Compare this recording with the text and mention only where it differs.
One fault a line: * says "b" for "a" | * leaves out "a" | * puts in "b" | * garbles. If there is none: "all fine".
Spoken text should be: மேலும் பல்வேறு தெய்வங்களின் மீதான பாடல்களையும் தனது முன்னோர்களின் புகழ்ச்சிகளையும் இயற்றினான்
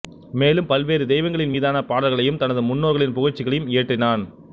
all fine